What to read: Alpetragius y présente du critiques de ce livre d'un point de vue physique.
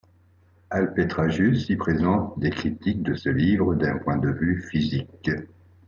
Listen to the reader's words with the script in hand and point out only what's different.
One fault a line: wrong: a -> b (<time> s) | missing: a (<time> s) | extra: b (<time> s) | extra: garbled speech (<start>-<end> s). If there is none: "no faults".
wrong: du -> des (2.4 s)